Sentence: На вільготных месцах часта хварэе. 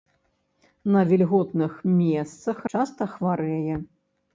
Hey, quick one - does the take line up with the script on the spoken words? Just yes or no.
yes